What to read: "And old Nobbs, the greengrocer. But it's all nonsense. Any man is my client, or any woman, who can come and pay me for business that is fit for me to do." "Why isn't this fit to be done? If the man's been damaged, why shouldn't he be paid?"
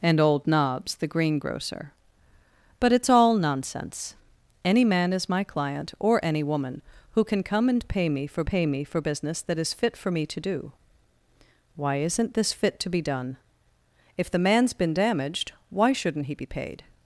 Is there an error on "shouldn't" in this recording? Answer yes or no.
no